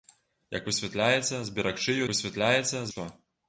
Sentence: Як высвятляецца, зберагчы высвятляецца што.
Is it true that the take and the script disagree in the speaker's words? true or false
false